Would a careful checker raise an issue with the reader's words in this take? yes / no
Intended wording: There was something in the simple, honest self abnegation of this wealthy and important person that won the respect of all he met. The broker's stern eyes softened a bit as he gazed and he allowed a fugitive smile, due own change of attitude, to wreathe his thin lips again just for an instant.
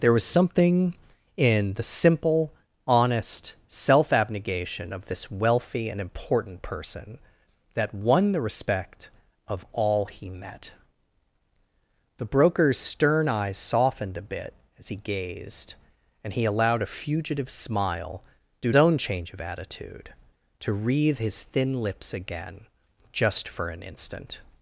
no